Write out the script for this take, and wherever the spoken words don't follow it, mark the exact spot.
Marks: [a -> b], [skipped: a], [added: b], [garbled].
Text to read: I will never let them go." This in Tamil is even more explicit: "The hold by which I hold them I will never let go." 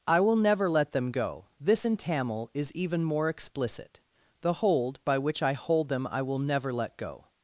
I will never let them go." This in Tamil is even more explicit: "The hold by which I hold them I will never let go."